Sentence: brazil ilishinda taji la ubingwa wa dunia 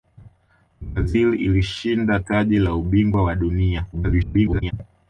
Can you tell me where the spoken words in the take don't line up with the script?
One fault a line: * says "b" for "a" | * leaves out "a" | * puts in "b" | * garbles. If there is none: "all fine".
* garbles